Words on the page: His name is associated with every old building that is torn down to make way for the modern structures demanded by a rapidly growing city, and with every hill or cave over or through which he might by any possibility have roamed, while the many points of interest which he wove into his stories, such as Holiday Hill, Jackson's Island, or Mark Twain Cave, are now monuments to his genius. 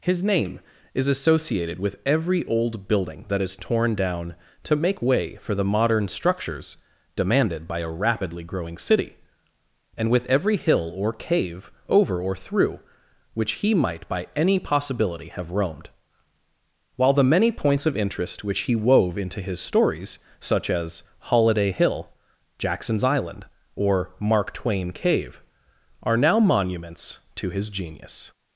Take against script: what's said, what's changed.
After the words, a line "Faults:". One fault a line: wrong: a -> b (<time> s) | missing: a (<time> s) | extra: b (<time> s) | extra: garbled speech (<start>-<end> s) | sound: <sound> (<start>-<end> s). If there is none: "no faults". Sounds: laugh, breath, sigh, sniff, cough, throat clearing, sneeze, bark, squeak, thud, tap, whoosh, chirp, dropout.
His name is associated with every old building that is torn down to make way for the modern structures demanded by a rapidly growing city, and with every hill or cave over or through which he might by any possibility have roamed, while the many points of interest which he wove into his stories, such as Holiday Hill, Jackson's Island, or Mark Twain Cave, are now monuments to his genius.
Faults:
no faults